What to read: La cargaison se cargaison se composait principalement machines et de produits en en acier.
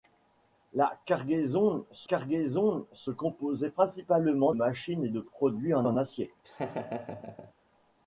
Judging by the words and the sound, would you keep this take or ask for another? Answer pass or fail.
fail